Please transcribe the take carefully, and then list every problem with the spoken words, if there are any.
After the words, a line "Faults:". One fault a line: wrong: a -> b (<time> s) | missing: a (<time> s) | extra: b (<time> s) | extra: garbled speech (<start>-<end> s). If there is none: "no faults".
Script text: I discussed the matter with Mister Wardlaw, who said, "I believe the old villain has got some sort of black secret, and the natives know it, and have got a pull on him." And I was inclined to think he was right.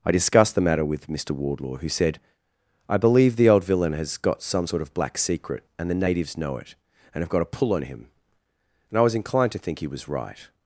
I discussed the matter with Mister Wardlaw, who said, "I believe the old villain has got some sort of black secret, and the natives know it, and have got a pull on him." And I was inclined to think he was right.
Faults:
no faults